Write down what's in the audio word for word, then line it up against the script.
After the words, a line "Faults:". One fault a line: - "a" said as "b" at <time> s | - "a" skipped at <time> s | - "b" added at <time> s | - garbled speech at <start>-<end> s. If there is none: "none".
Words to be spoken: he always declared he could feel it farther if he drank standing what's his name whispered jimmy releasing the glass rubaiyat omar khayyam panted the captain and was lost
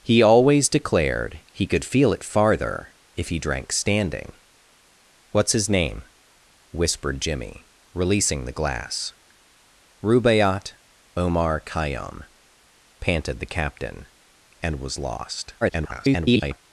he always declared he could feel it farther if he drank standing what's his name whispered jimmy releasing the glass rubaiyat omar khayyam panted the captain and was lost [garbled]
Faults:
- garbled speech at 15.6-16.6 s